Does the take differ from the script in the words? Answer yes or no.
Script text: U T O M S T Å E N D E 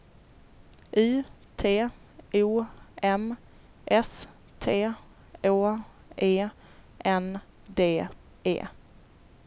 no